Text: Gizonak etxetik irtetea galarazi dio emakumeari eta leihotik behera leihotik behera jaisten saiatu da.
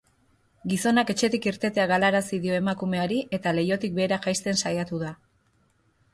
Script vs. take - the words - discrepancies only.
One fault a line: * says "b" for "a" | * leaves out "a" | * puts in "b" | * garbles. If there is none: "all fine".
* leaves out "leihotik behera"